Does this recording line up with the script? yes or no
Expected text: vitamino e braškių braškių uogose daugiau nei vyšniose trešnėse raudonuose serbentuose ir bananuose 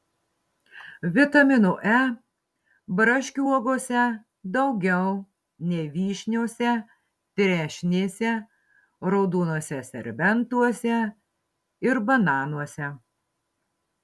no